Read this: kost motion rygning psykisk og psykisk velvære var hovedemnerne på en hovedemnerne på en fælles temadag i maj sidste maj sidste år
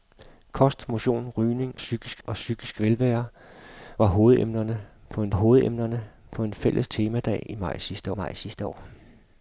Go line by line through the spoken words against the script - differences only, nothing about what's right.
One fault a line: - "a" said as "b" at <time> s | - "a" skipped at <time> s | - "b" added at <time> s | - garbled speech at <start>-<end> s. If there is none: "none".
none